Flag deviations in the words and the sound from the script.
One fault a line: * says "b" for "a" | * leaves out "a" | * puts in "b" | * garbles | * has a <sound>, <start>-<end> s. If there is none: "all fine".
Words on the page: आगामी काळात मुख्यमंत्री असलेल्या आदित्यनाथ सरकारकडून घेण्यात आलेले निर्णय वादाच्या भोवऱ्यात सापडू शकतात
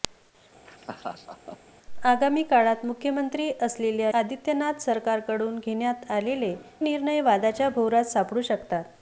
* has a laugh, 0.7-1.6 s